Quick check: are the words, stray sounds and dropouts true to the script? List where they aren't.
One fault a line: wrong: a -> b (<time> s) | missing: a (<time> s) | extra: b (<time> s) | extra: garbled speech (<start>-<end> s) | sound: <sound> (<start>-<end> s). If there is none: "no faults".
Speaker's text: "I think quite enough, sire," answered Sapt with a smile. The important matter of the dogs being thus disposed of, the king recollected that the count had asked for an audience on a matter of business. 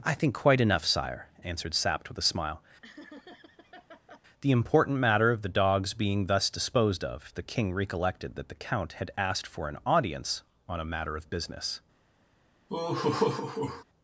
sound: laugh (2.8-4.2 s)
sound: laugh (12.7-13.8 s)